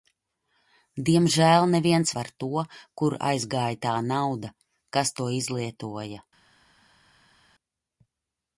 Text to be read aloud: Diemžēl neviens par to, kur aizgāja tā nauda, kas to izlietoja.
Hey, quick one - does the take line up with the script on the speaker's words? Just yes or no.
yes